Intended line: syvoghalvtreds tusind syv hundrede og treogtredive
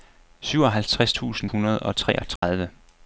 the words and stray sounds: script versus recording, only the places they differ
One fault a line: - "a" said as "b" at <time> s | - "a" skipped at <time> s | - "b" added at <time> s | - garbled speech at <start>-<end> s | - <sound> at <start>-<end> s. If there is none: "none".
- "syv" skipped at 1.5 s
- dropout at 2.4-2.4 s